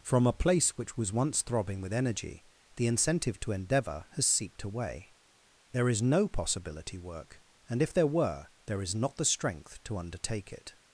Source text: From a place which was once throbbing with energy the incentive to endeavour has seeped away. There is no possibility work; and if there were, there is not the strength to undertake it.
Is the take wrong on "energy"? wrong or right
right